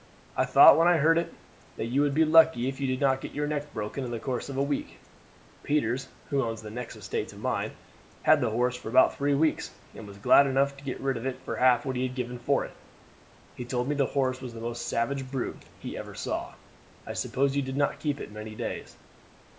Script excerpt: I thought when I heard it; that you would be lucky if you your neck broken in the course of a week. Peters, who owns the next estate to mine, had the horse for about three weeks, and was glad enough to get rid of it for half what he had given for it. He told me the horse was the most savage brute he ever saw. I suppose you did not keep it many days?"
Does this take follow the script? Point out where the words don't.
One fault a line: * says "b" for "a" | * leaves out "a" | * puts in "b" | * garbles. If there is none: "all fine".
* puts in "did not get"